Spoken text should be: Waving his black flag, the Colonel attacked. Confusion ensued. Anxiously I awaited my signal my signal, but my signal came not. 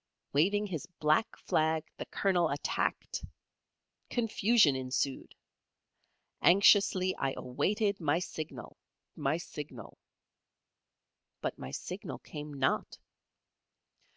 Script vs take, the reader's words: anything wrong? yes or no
no